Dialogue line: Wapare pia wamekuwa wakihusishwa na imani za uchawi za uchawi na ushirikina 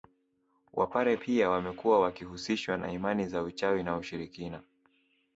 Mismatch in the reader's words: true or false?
true